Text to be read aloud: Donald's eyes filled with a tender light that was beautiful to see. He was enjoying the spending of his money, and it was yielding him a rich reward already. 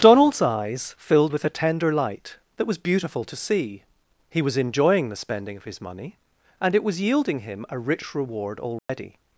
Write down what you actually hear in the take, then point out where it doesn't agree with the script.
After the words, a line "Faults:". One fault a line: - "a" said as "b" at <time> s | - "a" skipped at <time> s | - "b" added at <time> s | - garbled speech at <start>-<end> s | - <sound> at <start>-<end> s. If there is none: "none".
Donald's eyes filled with a tender light that was beautiful to see. He was enjoying the spending of his money, and it was yielding him a rich reward already.
Faults:
- dropout at 8.8-8.9 s